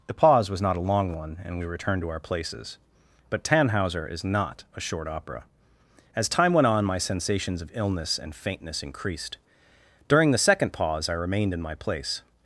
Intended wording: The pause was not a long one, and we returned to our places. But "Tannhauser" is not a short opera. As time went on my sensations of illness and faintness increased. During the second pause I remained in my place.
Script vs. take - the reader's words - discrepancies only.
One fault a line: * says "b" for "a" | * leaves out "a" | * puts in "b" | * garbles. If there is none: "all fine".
all fine